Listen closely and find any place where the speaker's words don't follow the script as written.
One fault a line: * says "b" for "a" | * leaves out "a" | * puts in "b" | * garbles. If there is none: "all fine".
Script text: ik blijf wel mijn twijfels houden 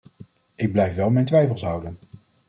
all fine